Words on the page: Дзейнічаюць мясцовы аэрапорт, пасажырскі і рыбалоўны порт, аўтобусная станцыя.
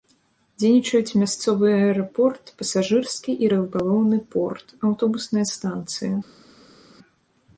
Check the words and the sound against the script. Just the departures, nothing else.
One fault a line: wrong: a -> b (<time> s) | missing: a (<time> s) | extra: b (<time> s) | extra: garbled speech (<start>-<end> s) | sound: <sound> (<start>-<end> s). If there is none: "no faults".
no faults